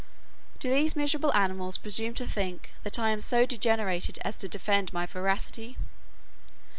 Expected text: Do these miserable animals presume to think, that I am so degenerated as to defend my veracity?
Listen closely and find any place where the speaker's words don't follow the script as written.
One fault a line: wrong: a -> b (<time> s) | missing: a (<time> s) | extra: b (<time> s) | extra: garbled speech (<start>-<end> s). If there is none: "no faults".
no faults